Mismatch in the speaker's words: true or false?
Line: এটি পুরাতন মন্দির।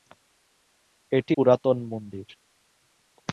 false